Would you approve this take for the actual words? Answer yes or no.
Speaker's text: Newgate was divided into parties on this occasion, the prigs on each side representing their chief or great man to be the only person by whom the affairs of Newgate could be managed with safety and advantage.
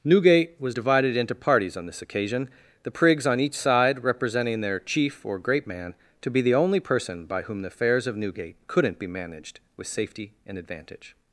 no